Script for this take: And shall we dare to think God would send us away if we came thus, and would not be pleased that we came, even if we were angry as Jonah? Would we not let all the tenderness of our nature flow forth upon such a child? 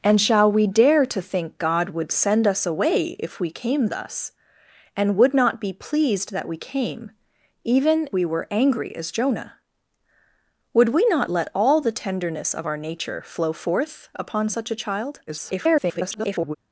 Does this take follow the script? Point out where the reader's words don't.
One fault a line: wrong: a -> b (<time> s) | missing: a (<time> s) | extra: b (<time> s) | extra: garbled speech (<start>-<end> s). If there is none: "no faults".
missing: if (8.1 s)
extra: garbled speech (15.3-16.6 s)